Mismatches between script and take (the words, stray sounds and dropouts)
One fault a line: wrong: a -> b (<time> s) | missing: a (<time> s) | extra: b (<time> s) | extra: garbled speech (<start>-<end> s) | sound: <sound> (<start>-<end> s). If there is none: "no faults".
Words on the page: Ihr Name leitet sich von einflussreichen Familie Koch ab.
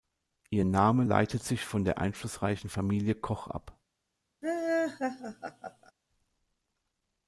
extra: der (1.8 s)
sound: laugh (4.4-5.9 s)